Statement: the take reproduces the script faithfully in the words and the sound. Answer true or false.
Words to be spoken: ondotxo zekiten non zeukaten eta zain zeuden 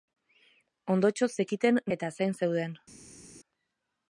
false